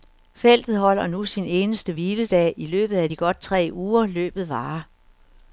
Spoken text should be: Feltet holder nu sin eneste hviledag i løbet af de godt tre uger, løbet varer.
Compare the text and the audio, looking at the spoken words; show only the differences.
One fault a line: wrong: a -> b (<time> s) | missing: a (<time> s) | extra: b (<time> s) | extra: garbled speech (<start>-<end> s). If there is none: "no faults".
no faults